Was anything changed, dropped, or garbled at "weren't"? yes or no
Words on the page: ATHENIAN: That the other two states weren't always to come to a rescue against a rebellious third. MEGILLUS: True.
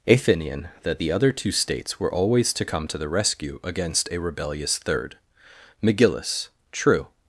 yes